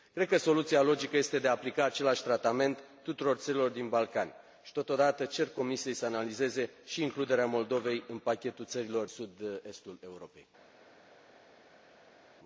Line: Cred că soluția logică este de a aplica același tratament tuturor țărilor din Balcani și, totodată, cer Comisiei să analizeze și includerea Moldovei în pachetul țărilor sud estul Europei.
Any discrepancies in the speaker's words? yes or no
no